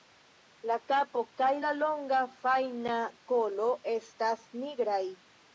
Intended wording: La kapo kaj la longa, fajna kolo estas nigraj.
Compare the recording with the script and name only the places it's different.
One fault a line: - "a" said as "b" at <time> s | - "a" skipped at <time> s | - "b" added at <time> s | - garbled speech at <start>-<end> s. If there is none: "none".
none